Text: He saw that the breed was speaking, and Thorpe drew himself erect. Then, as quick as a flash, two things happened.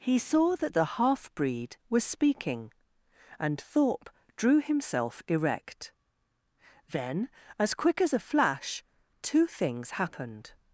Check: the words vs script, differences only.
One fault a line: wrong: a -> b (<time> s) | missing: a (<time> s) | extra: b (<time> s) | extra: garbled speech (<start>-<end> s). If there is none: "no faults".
extra: half (1.0 s)